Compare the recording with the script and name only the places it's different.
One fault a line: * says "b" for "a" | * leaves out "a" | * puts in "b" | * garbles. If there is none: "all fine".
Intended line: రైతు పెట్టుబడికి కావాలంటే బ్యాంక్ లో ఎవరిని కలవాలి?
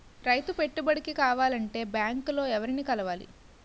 all fine